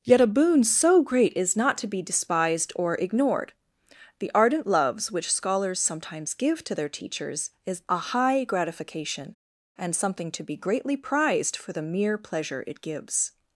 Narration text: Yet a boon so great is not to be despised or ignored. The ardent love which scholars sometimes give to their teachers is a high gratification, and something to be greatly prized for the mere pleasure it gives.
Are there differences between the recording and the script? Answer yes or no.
yes